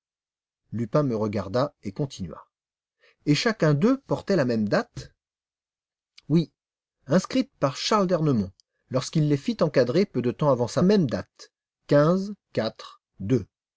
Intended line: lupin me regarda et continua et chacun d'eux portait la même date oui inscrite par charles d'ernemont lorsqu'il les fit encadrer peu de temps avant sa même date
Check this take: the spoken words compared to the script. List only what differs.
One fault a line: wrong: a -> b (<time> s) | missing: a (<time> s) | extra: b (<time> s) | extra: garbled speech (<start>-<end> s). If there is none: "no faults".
no faults